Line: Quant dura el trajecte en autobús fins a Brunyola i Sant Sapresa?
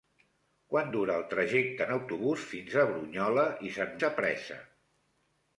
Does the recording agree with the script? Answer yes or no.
yes